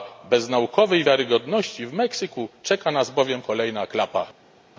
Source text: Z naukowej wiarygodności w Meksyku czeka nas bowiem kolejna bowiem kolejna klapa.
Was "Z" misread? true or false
true